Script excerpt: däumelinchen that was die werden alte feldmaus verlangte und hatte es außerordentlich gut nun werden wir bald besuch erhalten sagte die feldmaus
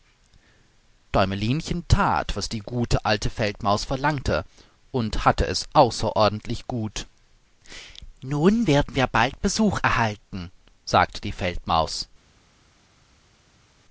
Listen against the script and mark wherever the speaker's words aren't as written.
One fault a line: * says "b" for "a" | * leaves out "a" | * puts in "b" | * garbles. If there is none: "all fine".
* says "gute" for "werden"